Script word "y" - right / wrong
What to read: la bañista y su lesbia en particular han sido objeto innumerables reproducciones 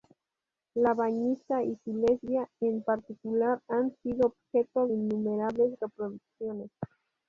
right